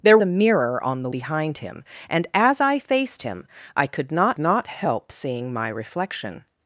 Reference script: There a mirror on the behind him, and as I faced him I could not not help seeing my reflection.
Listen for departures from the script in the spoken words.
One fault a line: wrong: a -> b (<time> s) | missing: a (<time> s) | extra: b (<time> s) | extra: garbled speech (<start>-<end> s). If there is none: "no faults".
no faults